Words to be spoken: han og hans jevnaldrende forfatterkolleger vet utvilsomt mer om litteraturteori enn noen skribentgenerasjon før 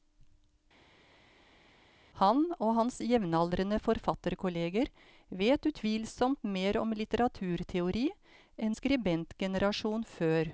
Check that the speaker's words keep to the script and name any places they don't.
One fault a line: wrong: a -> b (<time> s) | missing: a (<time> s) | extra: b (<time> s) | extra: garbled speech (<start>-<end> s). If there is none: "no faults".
missing: noen (8.8 s)